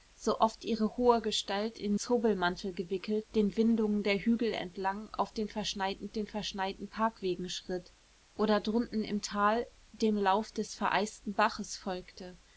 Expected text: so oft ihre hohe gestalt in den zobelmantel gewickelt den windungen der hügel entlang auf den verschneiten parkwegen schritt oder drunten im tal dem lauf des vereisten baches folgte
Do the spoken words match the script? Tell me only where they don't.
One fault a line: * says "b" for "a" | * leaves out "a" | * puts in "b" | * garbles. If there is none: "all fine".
* leaves out "den"
* puts in "den verschneiten"